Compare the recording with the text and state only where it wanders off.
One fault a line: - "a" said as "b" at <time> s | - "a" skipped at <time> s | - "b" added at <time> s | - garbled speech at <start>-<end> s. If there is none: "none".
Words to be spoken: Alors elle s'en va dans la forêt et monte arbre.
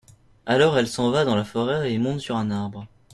- "sur un" added at 2.2 s